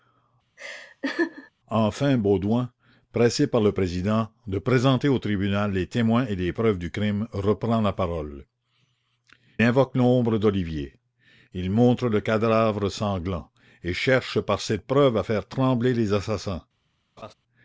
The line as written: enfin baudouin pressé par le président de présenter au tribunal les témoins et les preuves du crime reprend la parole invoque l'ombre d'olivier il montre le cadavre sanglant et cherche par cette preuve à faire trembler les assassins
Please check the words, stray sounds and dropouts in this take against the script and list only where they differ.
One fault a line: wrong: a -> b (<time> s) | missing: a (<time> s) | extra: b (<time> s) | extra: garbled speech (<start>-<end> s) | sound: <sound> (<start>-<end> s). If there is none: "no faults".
sound: laugh (0.6-1.5 s)
sound: laugh (17.2-17.3 s)